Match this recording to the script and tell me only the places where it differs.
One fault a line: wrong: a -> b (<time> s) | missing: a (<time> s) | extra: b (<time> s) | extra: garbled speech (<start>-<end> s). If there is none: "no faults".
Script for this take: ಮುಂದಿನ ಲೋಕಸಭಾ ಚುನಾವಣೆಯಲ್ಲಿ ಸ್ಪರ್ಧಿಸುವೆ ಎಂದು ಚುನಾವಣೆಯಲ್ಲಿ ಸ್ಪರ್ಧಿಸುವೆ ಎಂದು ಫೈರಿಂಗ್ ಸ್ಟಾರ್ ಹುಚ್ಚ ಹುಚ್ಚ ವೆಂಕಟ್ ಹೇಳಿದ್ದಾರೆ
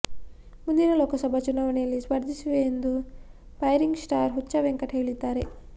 missing: ಚುನಾವಣೆಯಲ್ಲಿ ಸ್ಪರ್ಧಿಸುವೆ ಎಂದು (2.9 s)
missing: ಹುಚ್ಚ (4.5 s)